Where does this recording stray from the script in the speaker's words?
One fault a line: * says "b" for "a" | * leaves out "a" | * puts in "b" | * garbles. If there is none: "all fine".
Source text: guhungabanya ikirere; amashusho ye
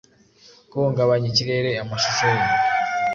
all fine